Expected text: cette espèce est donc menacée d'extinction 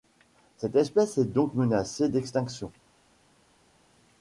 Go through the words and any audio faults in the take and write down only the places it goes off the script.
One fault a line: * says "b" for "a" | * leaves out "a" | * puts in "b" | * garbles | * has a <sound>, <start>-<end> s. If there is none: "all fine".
all fine